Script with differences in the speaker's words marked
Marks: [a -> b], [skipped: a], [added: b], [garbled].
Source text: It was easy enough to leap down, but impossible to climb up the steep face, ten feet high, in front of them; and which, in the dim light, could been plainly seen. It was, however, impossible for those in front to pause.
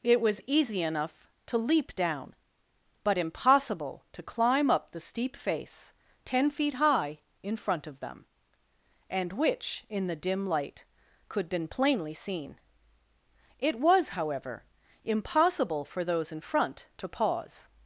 It was easy enough to leap down, but impossible to climb up the steep face, ten feet high, in front of them; and which, in the dim light, could been plainly seen. It was, however, impossible for those in front to pause.